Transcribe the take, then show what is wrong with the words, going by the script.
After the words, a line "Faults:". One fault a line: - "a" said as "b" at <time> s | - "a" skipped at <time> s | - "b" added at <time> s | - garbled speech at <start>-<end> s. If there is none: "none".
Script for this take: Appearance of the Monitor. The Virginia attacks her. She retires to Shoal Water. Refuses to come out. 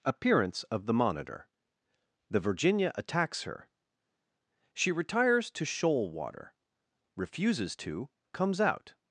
Appearance of the Monitor. The Virginia attacks her. She retires to Shoal Water. Refuses to comes out.
Faults:
- "come" said as "comes" at 8.3 s